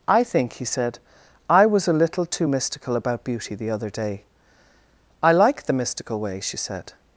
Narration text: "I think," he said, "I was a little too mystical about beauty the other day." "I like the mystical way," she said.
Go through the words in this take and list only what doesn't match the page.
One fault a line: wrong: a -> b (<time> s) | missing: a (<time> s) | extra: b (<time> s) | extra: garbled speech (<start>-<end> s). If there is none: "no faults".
no faults